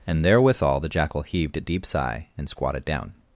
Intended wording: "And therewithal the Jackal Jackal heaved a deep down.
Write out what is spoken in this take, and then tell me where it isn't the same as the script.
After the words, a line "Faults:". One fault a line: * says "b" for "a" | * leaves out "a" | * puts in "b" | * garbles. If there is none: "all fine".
"And therewithal the Jackal heaved a deep sigh, and squatted down.
Faults:
* leaves out "Jackal"
* puts in "sigh and squatted"